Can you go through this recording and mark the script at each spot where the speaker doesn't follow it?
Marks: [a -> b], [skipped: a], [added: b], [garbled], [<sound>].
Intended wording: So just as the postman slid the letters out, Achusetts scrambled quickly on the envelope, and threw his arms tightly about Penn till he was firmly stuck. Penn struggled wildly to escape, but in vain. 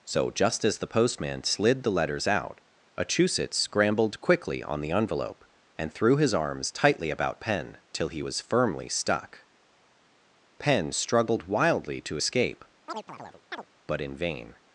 So just as the postman slid the letters out, Achusetts scrambled quickly on the envelope, and threw his arms tightly about Penn till he was firmly stuck. Penn struggled wildly to escape, [chirp] but in vain.